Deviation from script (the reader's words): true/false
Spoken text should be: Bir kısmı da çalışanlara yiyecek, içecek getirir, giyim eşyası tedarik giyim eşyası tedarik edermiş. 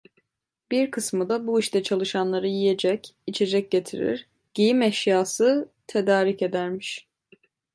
true